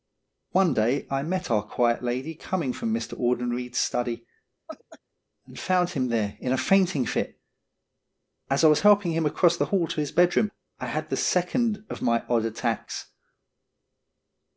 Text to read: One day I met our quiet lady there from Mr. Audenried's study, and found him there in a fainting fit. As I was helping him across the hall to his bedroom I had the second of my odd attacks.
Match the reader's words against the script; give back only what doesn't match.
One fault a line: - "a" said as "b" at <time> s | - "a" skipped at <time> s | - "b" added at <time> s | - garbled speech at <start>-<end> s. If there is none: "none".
- "there" said as "coming" at 2.3 s